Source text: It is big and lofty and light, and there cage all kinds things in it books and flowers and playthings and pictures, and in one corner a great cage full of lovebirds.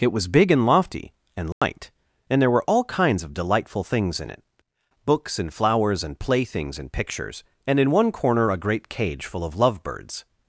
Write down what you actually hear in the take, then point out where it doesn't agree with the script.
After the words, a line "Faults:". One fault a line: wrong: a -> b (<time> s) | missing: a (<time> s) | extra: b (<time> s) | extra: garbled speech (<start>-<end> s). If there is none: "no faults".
It was big and lofty and light, and there were all kinds of delightful things in it books and flowers and playthings and pictures, and in one corner a great cage full of lovebirds.
Faults:
wrong: is -> was (0.1 s)
wrong: cage -> were (2.5 s)
extra: of delightful (3.2 s)